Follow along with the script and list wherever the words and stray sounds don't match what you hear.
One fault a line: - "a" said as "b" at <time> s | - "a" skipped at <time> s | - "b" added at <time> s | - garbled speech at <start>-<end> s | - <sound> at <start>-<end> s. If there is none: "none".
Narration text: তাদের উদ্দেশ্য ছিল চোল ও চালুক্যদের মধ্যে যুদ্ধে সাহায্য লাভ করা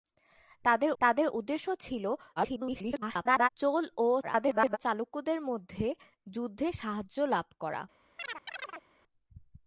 - "তাদের" added at 1.0 s
- garbled speech at 2.4-3.5 s
- garbled speech at 4.2-4.8 s
- chirp at 8.2-8.9 s